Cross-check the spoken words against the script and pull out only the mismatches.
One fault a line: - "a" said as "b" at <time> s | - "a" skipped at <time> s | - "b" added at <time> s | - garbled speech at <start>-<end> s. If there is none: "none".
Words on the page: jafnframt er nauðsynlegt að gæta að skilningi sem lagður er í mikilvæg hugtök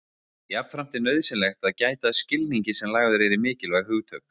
none